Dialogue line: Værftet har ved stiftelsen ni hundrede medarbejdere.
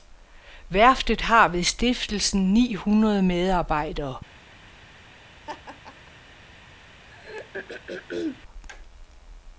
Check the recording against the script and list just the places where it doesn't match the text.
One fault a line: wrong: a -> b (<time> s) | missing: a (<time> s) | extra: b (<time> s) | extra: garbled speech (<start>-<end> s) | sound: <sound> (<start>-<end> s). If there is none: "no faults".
sound: laugh (5.5-6.1 s)
sound: throat clearing (7.1-8.4 s)